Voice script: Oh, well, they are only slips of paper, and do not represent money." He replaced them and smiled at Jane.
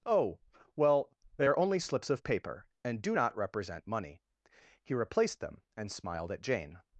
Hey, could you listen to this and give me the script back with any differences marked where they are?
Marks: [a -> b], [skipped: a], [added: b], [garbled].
Oh, well, they are only slips of paper, and do not represent money." He replaced them and smiled at Jane.